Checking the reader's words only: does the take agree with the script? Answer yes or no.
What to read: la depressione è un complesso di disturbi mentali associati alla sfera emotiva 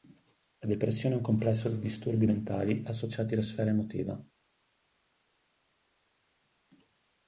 yes